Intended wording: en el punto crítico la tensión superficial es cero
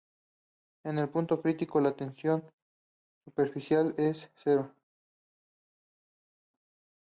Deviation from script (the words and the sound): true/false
false